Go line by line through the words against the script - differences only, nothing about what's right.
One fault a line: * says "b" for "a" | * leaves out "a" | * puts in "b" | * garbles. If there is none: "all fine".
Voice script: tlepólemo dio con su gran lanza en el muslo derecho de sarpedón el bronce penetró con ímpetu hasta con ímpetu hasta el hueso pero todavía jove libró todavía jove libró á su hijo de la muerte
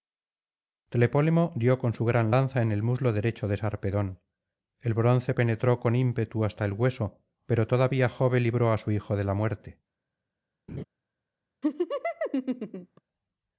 * leaves out "con ímpetu hasta"
* leaves out "todavía jove libró"